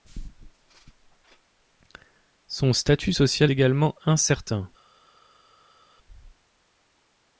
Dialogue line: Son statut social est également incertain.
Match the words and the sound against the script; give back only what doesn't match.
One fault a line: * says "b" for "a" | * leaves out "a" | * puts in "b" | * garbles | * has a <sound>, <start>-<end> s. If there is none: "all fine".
* leaves out "est"